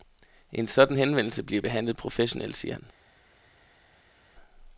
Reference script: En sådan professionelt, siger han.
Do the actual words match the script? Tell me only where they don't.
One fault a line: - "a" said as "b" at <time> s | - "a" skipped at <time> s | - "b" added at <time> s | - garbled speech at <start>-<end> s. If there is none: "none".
- "henvendelse bliver behandlet" added at 1.0 s